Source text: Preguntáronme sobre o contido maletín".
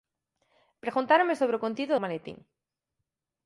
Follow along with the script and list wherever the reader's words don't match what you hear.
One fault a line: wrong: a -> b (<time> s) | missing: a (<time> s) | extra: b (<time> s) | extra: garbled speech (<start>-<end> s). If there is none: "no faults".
no faults